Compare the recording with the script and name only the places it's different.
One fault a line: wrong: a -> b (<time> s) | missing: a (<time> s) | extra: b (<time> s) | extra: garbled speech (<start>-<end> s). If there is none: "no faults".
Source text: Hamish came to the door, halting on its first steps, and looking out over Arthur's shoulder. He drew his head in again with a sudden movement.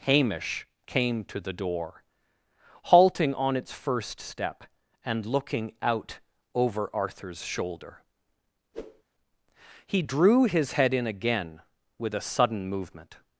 wrong: steps -> step (4.2 s)